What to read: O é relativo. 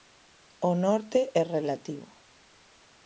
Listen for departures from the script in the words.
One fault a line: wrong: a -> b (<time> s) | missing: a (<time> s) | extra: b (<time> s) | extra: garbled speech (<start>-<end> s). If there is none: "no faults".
extra: norte (0.8 s)